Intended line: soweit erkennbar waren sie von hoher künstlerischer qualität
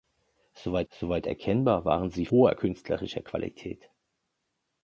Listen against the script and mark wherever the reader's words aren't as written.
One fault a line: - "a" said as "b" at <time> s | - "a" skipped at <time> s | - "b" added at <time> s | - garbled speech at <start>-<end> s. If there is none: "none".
- "soweit" added at 0.9 s
- "von" skipped at 2.3 s